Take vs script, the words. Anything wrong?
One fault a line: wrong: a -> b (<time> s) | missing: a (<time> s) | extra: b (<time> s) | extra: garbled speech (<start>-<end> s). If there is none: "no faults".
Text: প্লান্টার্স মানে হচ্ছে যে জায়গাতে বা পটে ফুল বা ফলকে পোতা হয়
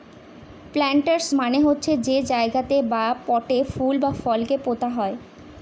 no faults